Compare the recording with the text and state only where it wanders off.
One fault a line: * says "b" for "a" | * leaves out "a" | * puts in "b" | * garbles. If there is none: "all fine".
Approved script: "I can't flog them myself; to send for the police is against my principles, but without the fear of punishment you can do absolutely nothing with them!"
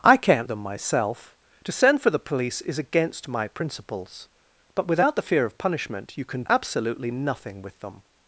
* leaves out "flog"
* leaves out "do"